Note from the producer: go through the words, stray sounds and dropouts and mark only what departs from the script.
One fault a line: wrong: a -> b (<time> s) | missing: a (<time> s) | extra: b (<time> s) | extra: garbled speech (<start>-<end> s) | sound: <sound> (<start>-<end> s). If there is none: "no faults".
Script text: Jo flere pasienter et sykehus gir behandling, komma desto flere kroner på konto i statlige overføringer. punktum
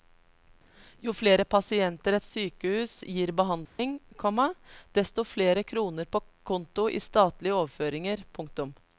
sound: dropout (3.7-3.8 s)